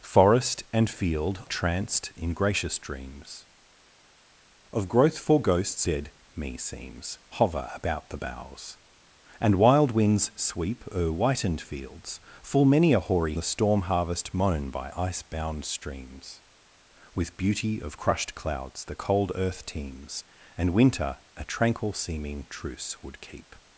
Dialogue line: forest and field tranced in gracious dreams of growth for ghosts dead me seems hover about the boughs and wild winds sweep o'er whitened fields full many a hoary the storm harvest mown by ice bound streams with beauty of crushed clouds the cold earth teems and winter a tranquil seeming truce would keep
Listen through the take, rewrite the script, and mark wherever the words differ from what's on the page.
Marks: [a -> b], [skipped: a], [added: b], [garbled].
forest and field tranced in gracious dreams of growth for ghosts dead me seems hover about the boughs and wild winds sweep o'er whitened fields full many a hoary the storm harvest mown by ice bound streams with beauty of crushed clouds the cold earth teems and winter a tranquil seeming truce would keep